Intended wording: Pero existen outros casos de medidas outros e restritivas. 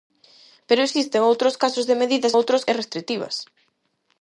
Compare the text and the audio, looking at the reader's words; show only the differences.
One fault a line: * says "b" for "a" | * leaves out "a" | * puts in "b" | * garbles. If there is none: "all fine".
all fine